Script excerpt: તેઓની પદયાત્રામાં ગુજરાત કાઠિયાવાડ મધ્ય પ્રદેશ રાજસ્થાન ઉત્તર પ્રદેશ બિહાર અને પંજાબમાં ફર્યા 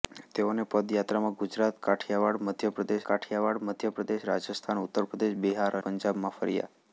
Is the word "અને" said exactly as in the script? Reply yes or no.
no